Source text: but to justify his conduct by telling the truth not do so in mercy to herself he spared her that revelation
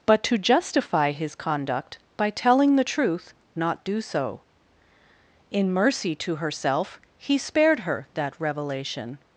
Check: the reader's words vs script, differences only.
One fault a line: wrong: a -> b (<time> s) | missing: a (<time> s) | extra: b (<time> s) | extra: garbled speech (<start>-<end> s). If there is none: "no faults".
no faults